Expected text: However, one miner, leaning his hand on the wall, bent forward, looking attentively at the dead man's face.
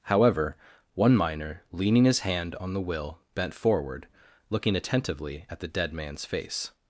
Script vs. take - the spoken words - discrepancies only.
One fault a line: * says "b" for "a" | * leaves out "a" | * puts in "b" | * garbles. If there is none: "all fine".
* says "will" for "wall"